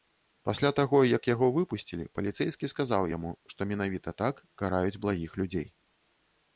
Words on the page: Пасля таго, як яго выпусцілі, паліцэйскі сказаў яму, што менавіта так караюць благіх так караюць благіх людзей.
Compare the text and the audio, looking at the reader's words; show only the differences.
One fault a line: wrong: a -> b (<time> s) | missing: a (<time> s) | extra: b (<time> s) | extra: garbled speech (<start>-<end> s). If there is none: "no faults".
missing: так караюць благіх (5.3 s)